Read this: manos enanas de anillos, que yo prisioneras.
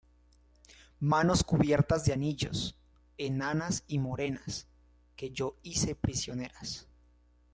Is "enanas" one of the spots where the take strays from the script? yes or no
yes